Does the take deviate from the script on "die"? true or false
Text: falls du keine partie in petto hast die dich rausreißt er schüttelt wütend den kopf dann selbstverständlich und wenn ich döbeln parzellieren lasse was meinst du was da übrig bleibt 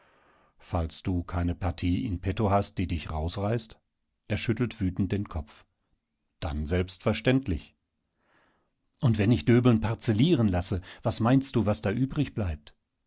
false